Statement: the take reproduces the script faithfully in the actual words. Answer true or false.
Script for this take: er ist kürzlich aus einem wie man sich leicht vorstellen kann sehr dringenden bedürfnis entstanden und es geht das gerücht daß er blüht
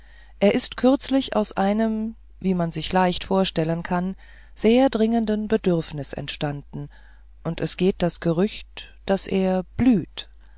true